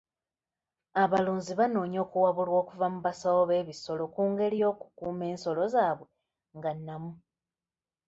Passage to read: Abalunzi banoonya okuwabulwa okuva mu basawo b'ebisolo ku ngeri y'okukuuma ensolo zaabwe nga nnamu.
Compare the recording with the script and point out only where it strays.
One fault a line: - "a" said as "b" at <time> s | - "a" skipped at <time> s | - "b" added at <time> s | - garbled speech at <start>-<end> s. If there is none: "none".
none